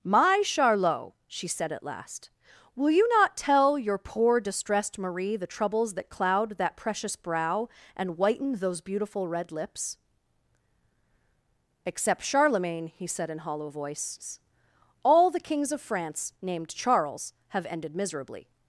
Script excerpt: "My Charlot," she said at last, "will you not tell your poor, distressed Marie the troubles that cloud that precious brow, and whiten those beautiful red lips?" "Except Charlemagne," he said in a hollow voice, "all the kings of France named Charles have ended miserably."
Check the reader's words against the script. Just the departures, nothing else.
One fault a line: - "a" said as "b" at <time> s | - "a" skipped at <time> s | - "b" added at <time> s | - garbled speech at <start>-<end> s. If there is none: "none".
- "a" skipped at 13.4 s